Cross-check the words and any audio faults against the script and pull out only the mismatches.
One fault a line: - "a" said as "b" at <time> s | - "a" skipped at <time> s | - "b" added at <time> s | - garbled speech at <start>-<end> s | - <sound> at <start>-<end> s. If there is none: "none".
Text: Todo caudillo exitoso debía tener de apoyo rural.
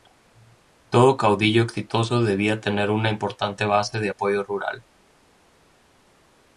- "una importante base" added at 2.9 s